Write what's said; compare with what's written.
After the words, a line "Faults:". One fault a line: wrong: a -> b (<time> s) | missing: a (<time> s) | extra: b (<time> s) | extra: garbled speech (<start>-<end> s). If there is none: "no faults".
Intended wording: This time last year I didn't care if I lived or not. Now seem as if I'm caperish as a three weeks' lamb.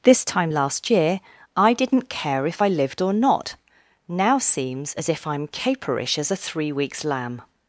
This time last year I didn't care if I lived or not. Now seems as if I'm caperish as a three weeks' lamb.
Faults:
wrong: seem -> seems (4.4 s)